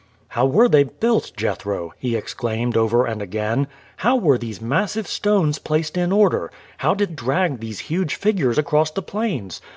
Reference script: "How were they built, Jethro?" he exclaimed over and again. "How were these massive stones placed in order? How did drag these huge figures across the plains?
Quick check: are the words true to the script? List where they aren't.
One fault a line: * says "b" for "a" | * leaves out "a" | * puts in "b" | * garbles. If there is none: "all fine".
all fine